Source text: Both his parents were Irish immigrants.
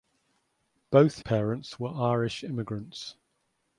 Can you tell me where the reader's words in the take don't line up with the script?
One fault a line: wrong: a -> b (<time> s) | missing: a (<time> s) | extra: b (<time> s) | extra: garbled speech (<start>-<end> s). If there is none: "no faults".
missing: his (1.2 s)